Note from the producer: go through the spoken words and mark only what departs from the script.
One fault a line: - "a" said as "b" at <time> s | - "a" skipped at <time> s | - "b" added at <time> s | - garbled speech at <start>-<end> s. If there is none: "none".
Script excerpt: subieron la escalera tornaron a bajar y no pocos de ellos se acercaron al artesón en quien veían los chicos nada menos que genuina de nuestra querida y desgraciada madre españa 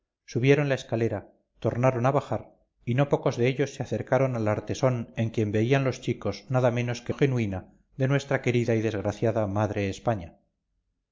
none